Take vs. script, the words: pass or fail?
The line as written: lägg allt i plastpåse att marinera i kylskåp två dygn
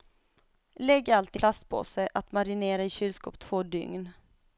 pass